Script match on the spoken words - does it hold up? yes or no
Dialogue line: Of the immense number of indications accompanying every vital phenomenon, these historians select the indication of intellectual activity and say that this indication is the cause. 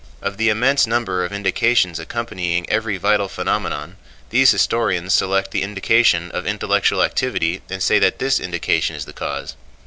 yes